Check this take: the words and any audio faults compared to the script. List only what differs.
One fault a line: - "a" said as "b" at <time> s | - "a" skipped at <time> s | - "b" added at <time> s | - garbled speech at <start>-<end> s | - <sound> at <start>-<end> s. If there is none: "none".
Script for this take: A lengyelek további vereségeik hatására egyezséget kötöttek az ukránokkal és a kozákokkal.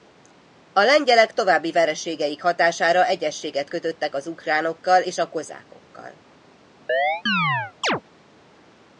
- chirp at 6.9-8.0 s